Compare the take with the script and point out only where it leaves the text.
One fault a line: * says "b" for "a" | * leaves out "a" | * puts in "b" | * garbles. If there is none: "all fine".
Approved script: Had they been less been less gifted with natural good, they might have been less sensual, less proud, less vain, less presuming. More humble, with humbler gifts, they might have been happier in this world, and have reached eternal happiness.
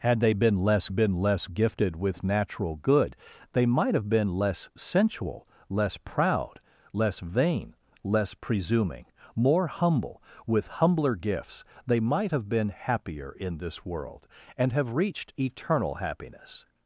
all fine